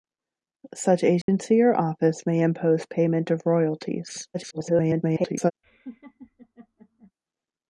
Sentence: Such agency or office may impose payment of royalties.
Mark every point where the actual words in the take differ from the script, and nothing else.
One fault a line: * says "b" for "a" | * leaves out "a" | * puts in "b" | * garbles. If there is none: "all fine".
* garbles